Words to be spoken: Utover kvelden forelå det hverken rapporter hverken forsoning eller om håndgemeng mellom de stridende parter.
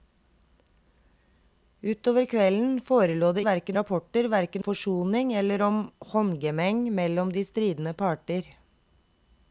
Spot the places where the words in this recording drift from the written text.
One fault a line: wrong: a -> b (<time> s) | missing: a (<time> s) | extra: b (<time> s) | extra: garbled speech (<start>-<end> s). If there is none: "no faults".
no faults